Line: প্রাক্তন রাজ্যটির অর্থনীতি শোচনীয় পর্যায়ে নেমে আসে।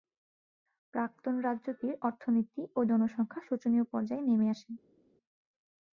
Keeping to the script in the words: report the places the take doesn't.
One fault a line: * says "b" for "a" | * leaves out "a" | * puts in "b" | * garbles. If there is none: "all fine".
* puts in "ও জনসংখ্যা"